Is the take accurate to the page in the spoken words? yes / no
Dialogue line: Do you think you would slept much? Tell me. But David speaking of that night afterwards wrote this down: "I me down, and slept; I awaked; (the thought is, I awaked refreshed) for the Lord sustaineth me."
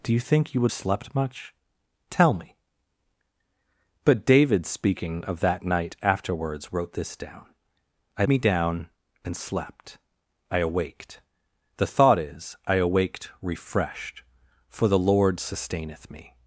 yes